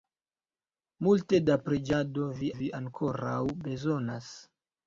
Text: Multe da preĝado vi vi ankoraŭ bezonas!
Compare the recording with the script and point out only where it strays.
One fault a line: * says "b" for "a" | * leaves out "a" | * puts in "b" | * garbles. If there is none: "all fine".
all fine